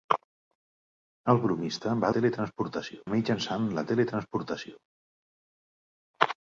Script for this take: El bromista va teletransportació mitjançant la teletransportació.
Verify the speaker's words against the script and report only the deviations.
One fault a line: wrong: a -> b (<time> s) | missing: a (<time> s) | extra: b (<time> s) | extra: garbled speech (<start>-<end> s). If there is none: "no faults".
no faults